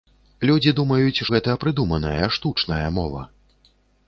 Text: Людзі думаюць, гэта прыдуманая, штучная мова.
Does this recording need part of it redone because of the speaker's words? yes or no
no